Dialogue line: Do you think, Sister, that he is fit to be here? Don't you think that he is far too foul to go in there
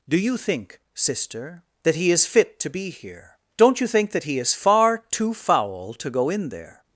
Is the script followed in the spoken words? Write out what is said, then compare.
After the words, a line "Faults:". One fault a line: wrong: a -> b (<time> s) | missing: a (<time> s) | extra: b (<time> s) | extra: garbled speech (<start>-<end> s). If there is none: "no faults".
Do you think, Sister, that he is fit to be here? Don't you think that he is far too foul to go in there
Faults:
no faults